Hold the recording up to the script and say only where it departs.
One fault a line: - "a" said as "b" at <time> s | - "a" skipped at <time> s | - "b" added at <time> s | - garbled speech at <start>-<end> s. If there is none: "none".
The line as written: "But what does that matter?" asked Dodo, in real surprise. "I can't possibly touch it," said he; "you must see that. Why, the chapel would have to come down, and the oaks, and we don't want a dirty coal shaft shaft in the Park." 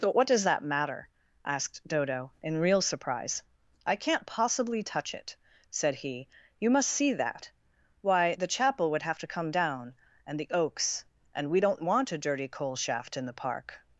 - "shaft" skipped at 13.2 s